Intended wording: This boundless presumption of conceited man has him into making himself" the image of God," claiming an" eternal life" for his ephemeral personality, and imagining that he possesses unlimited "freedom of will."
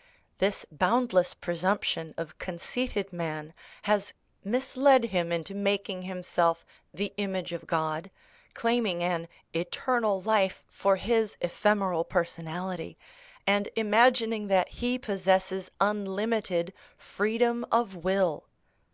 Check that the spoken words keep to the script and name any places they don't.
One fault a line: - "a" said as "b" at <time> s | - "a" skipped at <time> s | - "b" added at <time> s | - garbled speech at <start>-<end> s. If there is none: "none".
- "misled" added at 4.4 s